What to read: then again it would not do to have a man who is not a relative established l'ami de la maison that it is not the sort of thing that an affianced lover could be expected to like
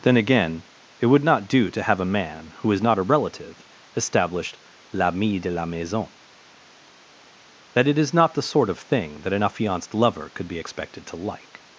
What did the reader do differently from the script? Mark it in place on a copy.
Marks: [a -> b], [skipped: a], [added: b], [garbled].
then again it would not do to have a man who is not a relative established l'ami de la maison that it is not the sort of thing that an affianced lover could be expected to like